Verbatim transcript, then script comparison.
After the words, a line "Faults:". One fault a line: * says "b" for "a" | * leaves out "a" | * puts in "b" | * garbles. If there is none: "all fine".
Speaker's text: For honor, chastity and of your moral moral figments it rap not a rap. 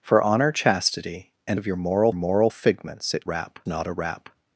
For honor, chastity and of your moral moral figments it rap not a rap.
Faults:
all fine